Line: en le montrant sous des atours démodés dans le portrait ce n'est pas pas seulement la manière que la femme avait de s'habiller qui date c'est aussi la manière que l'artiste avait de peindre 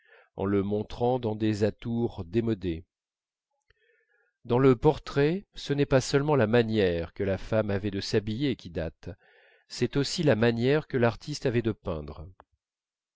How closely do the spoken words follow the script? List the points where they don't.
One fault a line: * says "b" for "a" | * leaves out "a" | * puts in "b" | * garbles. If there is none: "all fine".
* says "dans" for "sous"
* leaves out "pas"